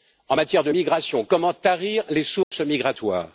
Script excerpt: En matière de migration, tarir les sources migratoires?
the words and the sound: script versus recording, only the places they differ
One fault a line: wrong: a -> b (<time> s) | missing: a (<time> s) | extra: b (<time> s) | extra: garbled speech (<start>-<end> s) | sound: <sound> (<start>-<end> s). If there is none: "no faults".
extra: comment (1.2 s)
sound: dropout (2.4-2.5 s)